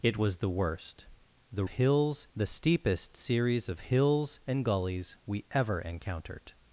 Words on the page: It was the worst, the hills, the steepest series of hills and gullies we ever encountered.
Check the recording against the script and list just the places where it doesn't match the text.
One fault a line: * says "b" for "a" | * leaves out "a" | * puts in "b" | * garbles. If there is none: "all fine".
all fine